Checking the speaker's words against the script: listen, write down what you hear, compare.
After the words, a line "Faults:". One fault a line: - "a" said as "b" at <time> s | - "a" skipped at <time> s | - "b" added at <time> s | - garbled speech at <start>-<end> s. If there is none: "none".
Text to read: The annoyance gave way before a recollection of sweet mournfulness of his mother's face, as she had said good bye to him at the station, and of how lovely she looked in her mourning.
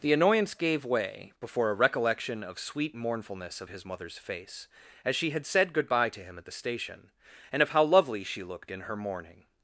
The annoyance gave way before a recollection of sweet mournfulness of his mother's face, as she had said good bye to him at the station, and of how lovely she looked in her mourning.
Faults:
none